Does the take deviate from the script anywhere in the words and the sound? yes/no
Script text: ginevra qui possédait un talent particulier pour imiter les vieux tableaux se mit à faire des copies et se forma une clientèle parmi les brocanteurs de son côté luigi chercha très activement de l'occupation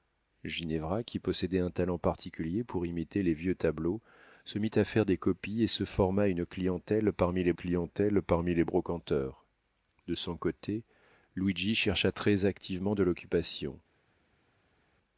yes